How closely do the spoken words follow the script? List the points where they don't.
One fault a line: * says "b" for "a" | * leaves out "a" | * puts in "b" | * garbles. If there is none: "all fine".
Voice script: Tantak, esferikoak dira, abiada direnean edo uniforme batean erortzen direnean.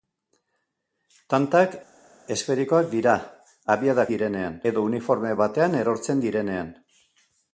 all fine